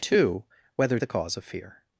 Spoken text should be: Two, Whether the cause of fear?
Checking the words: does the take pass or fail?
pass